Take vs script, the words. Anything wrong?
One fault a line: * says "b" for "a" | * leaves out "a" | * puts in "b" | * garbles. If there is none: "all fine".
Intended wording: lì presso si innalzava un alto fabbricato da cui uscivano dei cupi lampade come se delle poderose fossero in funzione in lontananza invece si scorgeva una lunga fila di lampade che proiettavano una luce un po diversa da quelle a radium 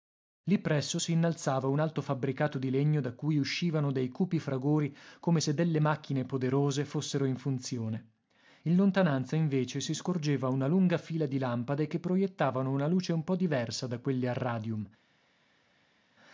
* puts in "di legno"
* says "fragori" for "lampade"
* puts in "macchine"